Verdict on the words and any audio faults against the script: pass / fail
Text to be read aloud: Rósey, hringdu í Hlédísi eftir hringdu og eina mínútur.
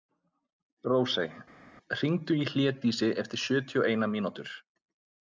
fail